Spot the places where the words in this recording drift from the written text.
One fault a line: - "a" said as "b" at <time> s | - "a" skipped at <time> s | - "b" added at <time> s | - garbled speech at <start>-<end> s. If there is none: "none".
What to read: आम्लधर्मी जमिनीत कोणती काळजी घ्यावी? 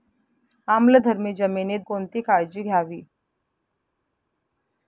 none